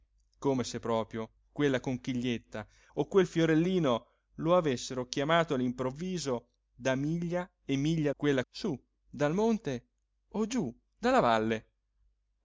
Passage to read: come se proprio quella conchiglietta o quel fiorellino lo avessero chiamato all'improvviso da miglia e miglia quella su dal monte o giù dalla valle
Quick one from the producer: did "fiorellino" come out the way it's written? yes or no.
yes